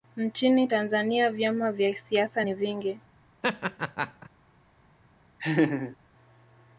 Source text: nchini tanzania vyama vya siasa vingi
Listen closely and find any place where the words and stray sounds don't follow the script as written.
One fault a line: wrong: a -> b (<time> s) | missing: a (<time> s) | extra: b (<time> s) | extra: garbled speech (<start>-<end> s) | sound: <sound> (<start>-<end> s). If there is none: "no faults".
extra: ni (2.4 s)
sound: laugh (3.4-4.3 s)
sound: laugh (5.4-6.0 s)